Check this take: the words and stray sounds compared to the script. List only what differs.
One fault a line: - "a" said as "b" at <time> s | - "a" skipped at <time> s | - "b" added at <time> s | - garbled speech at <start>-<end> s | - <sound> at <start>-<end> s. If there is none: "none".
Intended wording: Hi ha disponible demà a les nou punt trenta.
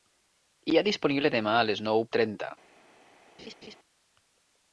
- "punt" skipped at 2.1 s
- laugh at 3.4-3.8 s